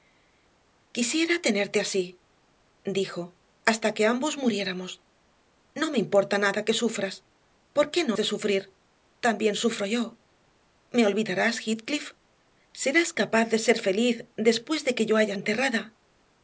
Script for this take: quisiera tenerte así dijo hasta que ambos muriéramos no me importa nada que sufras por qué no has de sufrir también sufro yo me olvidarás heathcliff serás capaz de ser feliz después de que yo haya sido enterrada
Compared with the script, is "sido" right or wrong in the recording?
wrong